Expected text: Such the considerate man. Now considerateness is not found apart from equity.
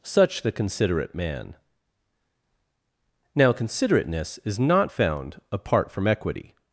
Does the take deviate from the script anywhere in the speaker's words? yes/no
no